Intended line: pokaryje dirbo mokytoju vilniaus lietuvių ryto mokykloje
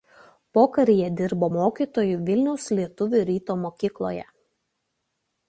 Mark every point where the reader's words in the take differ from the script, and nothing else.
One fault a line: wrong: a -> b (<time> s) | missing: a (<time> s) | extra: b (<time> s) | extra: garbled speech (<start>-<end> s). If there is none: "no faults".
no faults